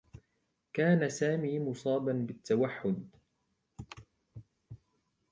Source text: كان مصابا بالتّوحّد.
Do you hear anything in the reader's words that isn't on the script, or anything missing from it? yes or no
yes